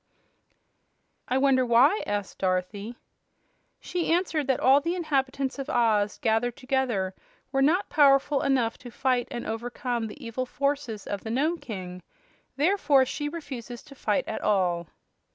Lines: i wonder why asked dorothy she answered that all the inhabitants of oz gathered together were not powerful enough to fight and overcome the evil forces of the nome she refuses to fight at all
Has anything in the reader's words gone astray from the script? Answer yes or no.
yes